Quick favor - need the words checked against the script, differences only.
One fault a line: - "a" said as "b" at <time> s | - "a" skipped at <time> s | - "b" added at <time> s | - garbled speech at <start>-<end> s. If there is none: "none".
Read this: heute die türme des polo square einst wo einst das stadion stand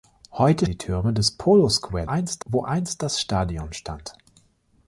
none